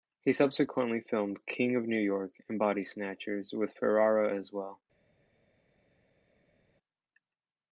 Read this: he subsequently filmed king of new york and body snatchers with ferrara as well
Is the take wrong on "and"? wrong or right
right